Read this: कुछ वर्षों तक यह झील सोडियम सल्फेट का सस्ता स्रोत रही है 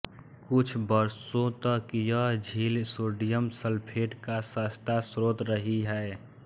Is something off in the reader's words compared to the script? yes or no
no